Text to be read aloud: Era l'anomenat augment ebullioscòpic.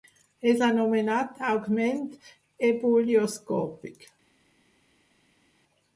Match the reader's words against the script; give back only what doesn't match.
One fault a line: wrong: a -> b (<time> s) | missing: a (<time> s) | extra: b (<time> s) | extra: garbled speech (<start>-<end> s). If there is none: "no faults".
wrong: Era -> És (0.5 s)